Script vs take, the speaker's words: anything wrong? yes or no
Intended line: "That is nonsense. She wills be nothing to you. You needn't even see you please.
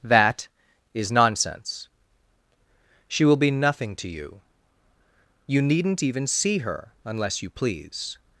yes